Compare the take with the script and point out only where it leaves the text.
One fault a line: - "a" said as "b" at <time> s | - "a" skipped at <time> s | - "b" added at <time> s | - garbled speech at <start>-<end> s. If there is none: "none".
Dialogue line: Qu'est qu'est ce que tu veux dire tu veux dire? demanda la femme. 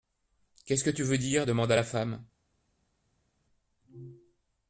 - "qu'est" skipped at 0.8 s
- "tu veux dire" skipped at 1.4 s